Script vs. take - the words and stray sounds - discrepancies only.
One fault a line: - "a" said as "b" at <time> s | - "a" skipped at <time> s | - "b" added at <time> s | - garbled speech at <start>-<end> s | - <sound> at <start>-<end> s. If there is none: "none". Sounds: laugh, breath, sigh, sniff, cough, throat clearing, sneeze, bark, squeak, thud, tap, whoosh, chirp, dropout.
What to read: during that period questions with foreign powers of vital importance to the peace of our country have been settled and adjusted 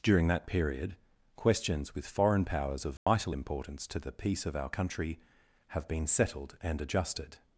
- dropout at 3.0-3.1 s